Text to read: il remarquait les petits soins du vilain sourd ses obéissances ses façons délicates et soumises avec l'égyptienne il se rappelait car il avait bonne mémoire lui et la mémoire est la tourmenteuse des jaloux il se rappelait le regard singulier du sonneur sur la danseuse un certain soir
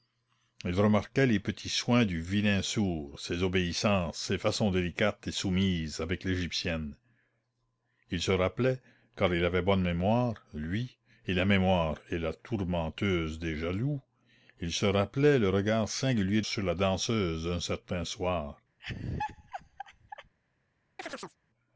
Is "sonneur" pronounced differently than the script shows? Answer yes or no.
yes